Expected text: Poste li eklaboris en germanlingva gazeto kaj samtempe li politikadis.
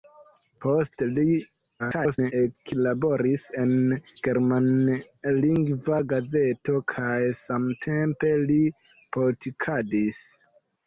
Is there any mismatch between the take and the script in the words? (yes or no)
yes